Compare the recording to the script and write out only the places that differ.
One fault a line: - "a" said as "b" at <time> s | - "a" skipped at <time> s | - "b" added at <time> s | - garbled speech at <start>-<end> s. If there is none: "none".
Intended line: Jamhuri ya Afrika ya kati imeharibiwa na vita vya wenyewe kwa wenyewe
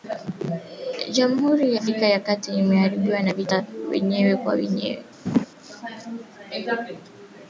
none